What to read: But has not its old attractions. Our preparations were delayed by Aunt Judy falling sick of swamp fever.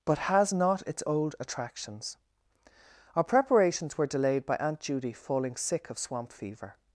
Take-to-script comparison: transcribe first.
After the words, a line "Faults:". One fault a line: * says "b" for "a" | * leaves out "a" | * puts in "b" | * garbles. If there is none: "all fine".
But has not its old attractions. Our preparations were delayed by Aunt Judy falling sick of swamp fever.
Faults:
all fine